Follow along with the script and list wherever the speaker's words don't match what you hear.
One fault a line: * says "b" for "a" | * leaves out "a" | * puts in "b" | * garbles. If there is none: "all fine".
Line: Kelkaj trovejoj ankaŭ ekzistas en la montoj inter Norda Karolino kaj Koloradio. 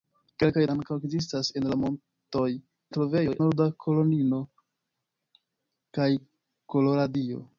* leaves out "trovejoj"
* says "trovejoj" for "inter"